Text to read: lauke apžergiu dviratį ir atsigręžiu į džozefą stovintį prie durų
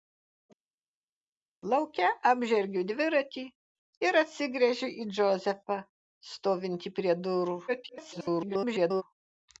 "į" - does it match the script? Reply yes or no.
yes